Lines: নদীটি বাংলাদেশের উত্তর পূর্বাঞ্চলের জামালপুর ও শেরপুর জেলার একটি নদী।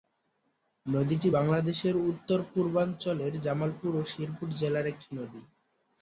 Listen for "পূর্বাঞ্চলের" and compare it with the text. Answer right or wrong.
right